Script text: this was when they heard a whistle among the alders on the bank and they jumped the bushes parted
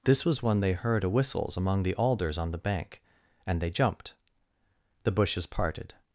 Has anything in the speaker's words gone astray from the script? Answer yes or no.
yes